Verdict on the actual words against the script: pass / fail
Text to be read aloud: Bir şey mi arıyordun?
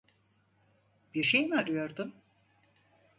pass